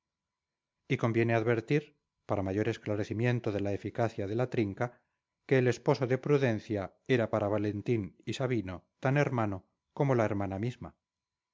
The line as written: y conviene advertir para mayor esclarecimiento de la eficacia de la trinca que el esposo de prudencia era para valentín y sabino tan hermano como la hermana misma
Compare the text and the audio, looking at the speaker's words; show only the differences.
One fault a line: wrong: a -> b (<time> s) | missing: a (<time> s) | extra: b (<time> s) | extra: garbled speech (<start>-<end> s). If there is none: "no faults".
no faults